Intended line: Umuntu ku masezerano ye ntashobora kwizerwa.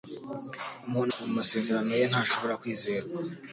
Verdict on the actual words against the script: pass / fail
pass